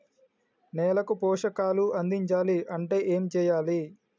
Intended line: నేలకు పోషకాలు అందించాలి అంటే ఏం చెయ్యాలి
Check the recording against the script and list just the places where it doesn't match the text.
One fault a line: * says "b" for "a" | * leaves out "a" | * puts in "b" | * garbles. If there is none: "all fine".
all fine